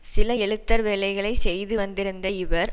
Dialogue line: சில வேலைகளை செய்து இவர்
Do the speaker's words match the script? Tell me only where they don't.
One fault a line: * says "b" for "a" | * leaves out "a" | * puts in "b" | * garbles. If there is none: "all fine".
* puts in "எழுத்தர்"
* puts in "வந்திருந்த"